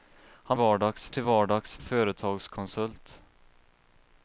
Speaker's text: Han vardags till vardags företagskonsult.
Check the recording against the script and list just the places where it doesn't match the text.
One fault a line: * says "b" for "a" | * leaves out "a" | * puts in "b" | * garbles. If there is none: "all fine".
all fine